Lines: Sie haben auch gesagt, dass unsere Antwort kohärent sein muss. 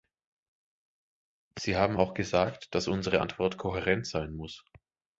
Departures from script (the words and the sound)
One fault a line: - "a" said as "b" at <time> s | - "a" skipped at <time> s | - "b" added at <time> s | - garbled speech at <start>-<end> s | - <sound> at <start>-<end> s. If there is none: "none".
none